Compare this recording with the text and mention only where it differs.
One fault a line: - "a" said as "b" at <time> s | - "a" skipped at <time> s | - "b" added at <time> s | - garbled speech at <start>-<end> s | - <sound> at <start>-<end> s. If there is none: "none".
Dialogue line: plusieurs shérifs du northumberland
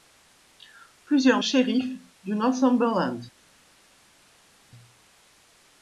none